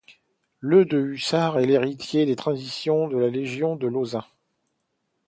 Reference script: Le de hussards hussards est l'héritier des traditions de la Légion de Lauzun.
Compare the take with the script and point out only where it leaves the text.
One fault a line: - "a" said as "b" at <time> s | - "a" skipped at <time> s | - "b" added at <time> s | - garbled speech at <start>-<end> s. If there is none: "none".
- "hussards" skipped at 1.6 s